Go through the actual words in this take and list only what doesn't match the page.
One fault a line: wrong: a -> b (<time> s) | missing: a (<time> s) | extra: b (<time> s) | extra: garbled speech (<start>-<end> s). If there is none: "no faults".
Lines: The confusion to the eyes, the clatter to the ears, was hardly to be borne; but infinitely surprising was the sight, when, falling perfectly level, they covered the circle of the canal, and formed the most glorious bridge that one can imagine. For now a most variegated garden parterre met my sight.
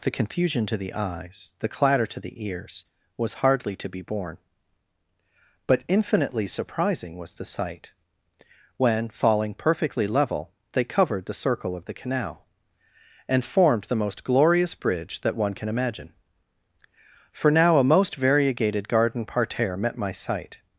no faults